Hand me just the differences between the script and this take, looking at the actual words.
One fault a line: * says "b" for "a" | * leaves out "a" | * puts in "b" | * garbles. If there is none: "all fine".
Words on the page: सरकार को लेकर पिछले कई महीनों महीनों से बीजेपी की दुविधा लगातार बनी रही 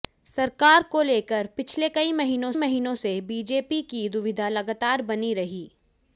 all fine